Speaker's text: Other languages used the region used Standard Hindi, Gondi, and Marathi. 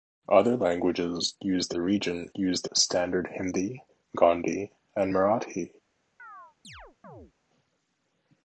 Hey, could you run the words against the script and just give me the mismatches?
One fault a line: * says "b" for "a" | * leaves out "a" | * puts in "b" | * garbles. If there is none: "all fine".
all fine